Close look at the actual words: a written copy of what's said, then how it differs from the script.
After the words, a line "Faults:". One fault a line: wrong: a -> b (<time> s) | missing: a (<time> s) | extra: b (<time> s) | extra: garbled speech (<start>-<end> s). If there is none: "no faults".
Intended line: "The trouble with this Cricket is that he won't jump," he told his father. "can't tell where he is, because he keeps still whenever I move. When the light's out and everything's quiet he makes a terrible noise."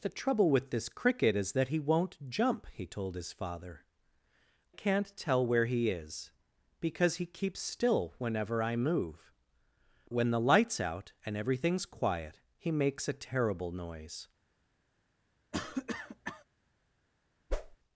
"The trouble with this Cricket is that he won't jump," he told his father. "can't tell where he is, because he keeps still whenever I move. When the light's out and everything's quiet he makes a terrible noise."
Faults:
no faults